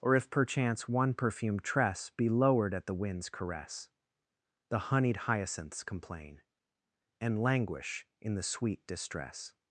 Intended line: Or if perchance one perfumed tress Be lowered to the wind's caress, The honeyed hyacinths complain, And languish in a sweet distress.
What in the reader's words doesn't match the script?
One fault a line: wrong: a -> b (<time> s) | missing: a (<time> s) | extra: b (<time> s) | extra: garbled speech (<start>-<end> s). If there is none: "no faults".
wrong: to -> at (2.7 s)
wrong: a -> the (8.3 s)